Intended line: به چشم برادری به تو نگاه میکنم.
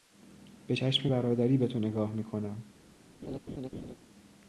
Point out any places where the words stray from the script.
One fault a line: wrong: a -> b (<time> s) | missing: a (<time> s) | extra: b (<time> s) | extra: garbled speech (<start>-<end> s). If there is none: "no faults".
no faults